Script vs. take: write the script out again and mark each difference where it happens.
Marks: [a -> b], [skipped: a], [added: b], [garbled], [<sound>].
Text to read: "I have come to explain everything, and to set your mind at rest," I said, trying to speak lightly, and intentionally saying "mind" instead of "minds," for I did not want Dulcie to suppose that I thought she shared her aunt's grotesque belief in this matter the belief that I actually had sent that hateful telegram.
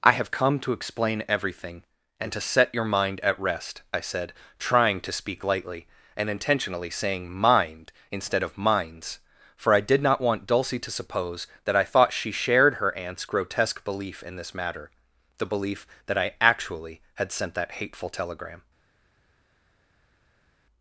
"I have come to explain everything, and to set your mind at rest," I said, trying to speak lightly, and intentionally saying "mind" instead of "minds," for I did not want Dulcie to suppose that I thought she shared her aunt's grotesque belief in this matter the belief that I actually had sent that hateful telegram.